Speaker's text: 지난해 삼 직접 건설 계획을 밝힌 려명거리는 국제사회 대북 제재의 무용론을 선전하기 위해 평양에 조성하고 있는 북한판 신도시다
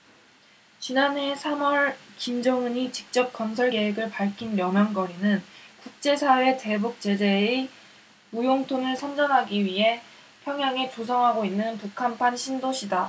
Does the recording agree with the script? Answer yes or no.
no